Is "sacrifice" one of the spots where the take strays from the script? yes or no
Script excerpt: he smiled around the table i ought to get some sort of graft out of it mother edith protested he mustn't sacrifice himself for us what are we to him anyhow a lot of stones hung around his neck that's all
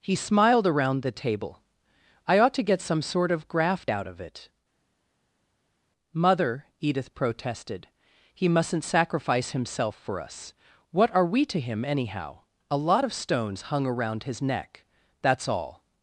no